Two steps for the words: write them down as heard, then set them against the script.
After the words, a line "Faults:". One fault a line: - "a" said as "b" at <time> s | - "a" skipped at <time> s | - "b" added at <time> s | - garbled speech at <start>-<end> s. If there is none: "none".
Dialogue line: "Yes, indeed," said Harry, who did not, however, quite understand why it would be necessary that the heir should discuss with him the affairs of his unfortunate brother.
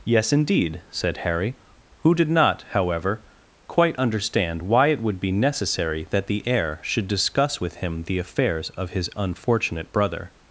"Yes, indeed," said Harry, who did not, however, quite understand why it would be necessary that the heir should discuss with him the affairs of his unfortunate brother.
Faults:
none